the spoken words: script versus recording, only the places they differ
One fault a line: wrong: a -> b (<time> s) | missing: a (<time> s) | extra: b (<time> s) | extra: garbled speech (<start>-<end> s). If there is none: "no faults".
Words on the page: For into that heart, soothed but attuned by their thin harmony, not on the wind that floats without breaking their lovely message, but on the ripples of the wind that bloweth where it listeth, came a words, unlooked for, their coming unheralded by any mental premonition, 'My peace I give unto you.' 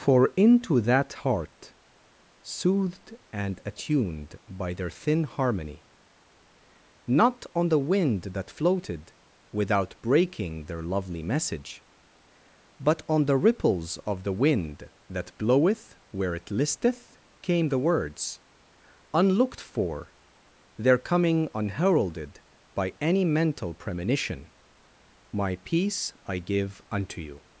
wrong: but -> and (3.3 s)
wrong: floats -> floated (8.5 s)
wrong: a -> the (17.7 s)